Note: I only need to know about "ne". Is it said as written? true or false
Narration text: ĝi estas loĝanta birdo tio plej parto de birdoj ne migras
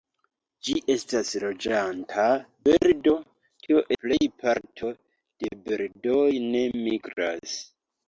true